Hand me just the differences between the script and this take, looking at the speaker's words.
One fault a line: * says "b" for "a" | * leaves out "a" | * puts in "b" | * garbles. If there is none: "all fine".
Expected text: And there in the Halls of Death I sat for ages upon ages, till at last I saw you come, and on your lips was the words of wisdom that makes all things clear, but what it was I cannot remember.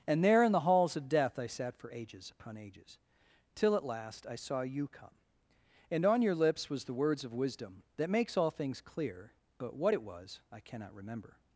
all fine